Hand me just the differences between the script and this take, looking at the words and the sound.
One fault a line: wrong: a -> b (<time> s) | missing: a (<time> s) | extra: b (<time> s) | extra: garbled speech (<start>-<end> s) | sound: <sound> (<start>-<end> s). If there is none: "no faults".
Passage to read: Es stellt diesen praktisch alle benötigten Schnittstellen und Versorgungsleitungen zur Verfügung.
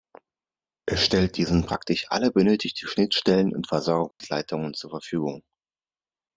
sound: dropout (4.1-4.2 s)